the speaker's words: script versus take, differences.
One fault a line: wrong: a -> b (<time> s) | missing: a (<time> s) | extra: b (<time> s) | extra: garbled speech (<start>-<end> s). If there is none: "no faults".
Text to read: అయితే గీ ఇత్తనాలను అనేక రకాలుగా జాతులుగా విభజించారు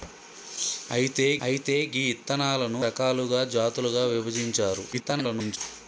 extra: అయితే (1.4 s)
missing: అనేక (2.8 s)
extra: garbled speech (4.9-5.6 s)